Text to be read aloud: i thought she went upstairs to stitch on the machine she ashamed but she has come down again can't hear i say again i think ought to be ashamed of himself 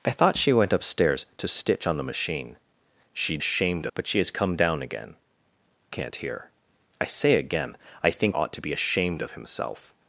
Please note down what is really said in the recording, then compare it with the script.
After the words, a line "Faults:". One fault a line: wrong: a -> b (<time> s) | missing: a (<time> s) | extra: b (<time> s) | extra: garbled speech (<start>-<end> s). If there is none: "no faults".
i thought she went upstairs to stitch on the machine she ashamed but she has come down again can't hear i say again i think ought to be ashamed of himself
Faults:
no faults